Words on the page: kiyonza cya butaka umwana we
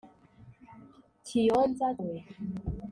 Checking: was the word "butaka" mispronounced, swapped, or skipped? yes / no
yes